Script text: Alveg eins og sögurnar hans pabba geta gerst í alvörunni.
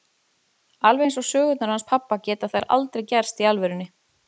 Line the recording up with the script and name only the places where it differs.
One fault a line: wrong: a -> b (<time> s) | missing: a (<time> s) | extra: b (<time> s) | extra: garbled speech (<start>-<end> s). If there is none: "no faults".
extra: þær aldrei (2.5 s)